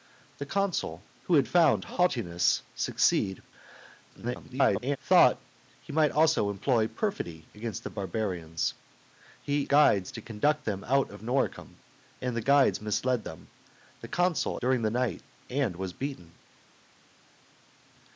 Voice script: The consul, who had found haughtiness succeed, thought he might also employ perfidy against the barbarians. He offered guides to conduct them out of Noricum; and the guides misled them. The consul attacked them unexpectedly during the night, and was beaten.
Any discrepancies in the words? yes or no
yes